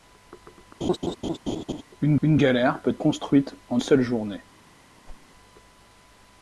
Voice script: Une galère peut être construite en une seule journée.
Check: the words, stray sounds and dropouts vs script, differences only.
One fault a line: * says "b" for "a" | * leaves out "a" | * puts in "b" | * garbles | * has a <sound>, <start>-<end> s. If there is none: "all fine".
* has a laugh, 0.8-1.8 s
* puts in "une"
* leaves out "être"
* leaves out "une"
* has a whoosh, 5.1-5.3 s